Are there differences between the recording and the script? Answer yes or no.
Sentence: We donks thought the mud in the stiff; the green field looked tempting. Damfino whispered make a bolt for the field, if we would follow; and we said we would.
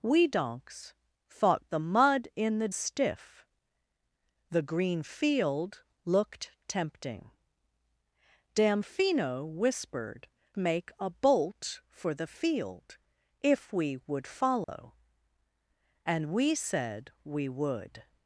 no